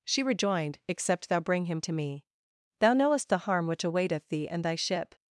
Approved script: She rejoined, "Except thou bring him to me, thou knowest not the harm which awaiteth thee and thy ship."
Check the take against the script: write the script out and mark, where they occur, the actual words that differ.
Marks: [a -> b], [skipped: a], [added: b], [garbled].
She rejoined, "Except thou bring him to me, thou knowest [skipped: not] the harm which awaiteth thee and thy ship."